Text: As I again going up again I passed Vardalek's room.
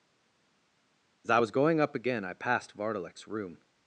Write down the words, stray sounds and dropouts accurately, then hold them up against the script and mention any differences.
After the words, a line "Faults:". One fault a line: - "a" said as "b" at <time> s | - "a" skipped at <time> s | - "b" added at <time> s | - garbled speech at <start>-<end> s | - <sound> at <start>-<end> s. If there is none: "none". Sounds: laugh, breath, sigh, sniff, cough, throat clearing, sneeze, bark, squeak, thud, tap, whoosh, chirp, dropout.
As I was going up again I passed Vardalek's room.
Faults:
- "again" said as "was" at 1.4 s